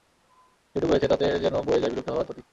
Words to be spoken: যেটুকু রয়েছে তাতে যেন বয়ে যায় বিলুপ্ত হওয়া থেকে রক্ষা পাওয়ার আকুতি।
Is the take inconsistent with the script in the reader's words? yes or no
yes